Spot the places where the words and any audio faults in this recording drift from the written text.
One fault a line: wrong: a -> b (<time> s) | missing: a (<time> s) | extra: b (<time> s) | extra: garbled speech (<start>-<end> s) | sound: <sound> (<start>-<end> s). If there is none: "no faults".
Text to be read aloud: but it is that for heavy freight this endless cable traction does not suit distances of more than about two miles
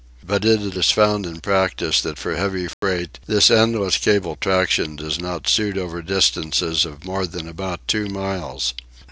extra: found in practice (0.9 s)
sound: dropout (2.7-2.8 s)
extra: over (5.8 s)